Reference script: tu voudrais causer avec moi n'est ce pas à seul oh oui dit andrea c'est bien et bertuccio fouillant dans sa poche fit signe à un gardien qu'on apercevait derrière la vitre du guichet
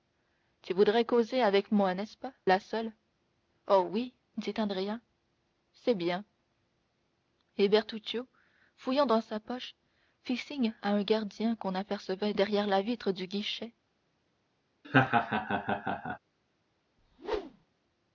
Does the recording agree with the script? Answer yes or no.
yes